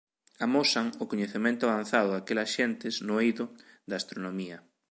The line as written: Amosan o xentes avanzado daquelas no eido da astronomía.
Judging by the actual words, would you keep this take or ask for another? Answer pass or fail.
fail